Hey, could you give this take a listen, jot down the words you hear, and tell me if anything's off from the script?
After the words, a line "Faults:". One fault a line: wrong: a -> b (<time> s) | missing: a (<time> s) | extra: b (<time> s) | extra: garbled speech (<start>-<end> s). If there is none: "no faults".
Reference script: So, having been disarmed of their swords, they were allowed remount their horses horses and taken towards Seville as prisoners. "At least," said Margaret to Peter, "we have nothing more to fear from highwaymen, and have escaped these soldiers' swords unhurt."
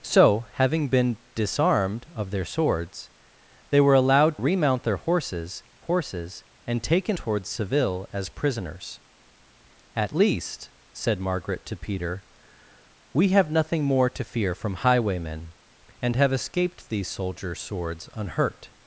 So, having been disarmed of their swords, they were allowed remount their horses horses and taken towards Seville as prisoners. "At least," said Margaret to Peter, "we have nothing more to fear from highwaymen, and have escaped these soldiers' swords unhurt."
Faults:
no faults